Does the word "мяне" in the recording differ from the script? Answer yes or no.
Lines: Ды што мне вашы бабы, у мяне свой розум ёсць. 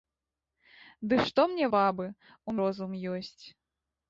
yes